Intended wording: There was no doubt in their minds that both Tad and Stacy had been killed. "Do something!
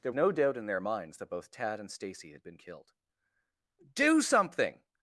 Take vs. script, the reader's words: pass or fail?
fail